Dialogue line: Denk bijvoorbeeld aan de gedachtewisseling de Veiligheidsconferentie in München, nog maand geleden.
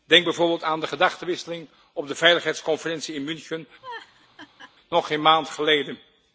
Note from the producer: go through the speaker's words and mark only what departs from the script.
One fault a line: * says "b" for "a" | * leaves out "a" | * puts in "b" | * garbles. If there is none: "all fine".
* puts in "op"
* puts in "geen"